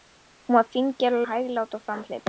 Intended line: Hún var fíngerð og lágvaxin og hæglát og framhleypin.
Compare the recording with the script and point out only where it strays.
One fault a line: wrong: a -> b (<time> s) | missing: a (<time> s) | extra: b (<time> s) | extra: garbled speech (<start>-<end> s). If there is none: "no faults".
missing: lágvaxin (1.2 s)